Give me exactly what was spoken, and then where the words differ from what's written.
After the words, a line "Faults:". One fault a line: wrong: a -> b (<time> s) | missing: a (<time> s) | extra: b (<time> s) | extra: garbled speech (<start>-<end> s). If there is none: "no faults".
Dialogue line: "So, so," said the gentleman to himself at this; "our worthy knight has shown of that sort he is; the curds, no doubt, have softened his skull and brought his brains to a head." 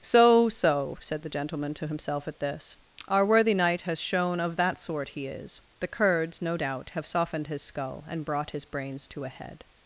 "So, so," said the gentleman to himself at this; "our worthy knight has shown of that sort he is; the curds, no doubt, have softened his skull and brought his brains to a head."
Faults:
no faults